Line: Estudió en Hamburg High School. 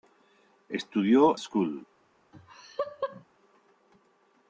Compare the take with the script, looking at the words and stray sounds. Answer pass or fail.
fail